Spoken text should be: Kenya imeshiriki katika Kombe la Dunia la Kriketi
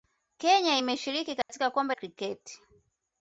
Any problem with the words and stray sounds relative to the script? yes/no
yes